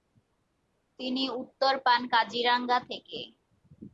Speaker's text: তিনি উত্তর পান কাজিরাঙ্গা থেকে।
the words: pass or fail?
pass